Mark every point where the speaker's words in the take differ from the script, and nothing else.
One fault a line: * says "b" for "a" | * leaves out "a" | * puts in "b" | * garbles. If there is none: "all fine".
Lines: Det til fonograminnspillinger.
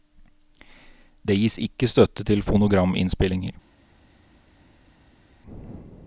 * puts in "gis ikke støtte"